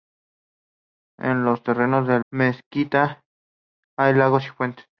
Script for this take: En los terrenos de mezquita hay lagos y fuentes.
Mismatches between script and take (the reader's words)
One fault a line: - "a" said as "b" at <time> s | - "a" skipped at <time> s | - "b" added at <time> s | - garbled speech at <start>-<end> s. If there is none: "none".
none